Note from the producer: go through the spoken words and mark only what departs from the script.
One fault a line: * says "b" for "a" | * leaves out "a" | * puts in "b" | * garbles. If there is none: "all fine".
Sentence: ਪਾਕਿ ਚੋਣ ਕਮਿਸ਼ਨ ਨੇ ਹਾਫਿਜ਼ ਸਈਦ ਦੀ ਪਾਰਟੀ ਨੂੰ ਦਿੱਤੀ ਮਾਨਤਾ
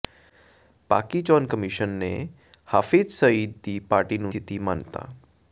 all fine